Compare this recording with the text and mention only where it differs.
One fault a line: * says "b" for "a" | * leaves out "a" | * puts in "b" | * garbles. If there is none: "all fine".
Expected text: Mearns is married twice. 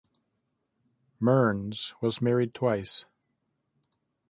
* says "was" for "is"